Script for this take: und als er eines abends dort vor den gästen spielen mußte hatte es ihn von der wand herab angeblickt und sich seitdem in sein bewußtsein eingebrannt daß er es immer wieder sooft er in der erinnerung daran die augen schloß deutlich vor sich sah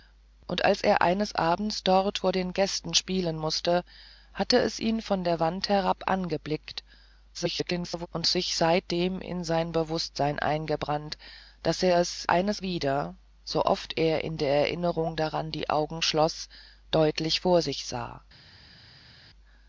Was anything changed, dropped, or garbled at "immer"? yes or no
yes